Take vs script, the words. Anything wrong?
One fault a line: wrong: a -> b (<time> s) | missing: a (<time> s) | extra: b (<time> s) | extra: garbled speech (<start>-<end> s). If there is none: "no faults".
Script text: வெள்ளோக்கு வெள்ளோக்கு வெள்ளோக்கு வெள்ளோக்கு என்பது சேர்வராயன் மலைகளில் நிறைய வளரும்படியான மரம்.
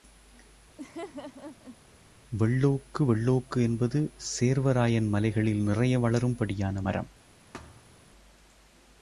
missing: வெள்ளோக்கு வெள்ளோக்கு (3.6 s)